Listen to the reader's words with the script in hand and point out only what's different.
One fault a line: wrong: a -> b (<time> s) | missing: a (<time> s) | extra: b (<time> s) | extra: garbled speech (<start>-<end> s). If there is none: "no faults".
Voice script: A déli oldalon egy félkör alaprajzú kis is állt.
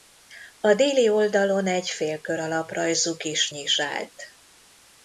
no faults